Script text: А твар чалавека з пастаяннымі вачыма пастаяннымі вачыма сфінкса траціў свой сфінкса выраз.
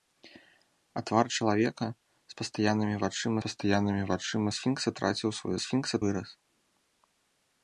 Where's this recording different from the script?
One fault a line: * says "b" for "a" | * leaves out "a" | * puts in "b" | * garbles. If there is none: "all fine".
all fine